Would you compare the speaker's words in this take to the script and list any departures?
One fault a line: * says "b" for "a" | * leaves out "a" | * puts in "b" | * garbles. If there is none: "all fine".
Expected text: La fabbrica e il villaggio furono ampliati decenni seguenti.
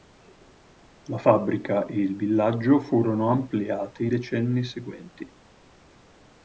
all fine